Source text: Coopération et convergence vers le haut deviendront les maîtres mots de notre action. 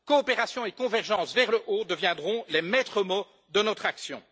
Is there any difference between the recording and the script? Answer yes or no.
no